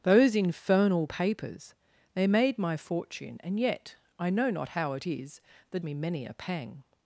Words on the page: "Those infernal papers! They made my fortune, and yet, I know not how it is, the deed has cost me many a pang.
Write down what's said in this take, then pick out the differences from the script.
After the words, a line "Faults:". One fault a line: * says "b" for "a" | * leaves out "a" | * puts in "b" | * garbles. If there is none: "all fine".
"Those infernal papers! They made my fortune, and yet, I know not how it is, the me many a pang.
Faults:
* leaves out "deed has cost"